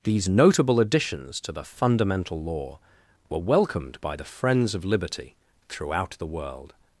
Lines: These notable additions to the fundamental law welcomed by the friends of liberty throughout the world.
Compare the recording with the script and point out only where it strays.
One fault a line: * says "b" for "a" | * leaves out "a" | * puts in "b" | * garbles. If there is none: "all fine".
* puts in "were"